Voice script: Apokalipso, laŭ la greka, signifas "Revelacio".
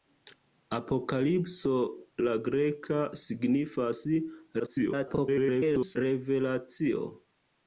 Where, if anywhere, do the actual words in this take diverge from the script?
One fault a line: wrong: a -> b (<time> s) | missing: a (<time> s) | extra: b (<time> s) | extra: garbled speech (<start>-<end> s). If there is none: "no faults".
missing: laŭ (1.7 s)
extra: garbled speech (4.6-6.0 s)